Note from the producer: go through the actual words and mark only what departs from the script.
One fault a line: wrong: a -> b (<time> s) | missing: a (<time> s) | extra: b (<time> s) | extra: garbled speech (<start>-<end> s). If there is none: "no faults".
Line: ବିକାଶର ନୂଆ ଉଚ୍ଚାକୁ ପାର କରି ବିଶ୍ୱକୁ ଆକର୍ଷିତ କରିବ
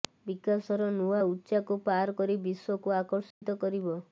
no faults